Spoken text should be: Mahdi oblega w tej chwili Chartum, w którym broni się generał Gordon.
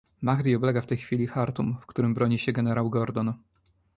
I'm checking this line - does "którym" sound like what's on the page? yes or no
yes